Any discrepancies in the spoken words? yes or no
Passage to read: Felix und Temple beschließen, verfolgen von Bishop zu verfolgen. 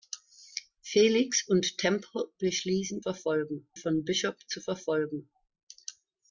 no